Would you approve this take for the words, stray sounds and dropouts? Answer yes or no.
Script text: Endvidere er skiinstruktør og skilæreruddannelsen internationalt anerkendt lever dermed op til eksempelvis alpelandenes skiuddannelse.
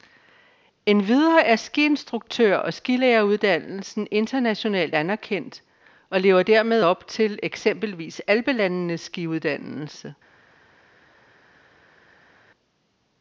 no